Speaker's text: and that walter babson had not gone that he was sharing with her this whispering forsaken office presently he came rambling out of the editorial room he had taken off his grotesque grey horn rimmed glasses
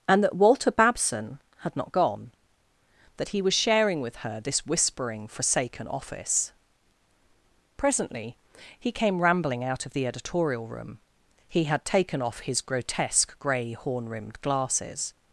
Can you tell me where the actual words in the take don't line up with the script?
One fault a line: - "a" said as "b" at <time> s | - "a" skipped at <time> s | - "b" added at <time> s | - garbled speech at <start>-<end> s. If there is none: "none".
none